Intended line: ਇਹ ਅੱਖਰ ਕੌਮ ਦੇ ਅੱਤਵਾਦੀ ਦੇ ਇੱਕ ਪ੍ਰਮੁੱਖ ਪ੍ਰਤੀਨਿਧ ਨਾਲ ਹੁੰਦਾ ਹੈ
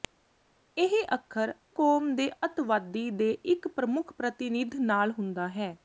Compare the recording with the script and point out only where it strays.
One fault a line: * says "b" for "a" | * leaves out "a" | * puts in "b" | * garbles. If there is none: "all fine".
all fine